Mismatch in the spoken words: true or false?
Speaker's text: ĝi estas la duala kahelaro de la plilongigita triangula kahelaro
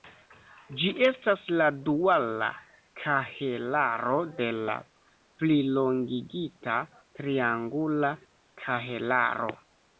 false